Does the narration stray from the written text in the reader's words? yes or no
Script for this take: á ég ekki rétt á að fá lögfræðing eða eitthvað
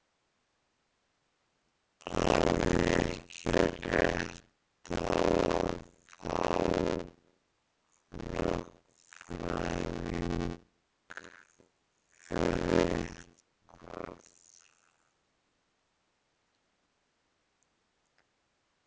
no